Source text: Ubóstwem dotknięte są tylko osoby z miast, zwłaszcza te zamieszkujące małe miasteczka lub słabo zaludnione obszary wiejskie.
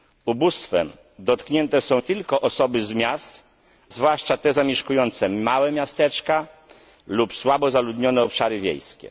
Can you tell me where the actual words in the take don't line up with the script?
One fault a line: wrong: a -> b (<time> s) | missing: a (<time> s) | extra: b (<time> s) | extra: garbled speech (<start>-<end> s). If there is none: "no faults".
no faults